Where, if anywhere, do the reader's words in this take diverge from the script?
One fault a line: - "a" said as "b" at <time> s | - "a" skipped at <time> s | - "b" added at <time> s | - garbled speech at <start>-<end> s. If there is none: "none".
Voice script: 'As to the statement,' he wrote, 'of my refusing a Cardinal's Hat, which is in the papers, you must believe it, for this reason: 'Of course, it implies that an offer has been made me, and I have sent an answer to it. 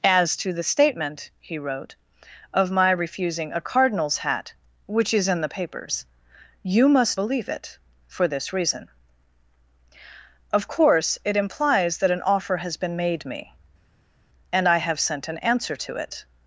none